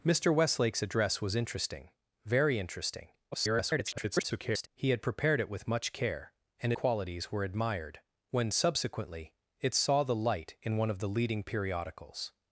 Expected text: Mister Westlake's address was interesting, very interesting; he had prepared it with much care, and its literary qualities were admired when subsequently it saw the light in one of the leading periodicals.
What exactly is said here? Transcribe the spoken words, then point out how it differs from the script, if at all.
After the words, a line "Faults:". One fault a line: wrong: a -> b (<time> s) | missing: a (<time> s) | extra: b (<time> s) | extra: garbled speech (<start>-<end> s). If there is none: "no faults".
Mister Westlake's address was interesting, very interesting; [garbled] he had prepared it with much care, and qualities were admired when subsequently it saw the light in one of the leading periodicals.
Faults:
extra: garbled speech (3.3-4.7 s)
missing: its literary (6.7 s)